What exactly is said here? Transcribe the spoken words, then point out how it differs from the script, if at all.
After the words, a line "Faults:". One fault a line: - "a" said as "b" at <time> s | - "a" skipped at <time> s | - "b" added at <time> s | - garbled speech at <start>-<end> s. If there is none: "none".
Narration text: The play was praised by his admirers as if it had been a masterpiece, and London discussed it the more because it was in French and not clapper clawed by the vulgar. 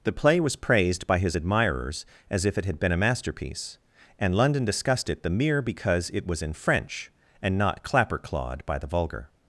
The play was praised by his admirers as if it had been a masterpiece, and London discussed it the mere because it was in French and not clapper clawed by the vulgar.
Faults:
- "more" said as "mere" at 5.3 s